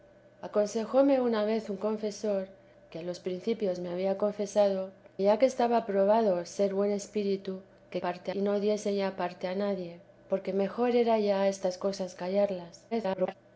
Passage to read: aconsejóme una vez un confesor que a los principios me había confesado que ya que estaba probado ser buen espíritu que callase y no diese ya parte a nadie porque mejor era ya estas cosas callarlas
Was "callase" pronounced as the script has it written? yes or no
no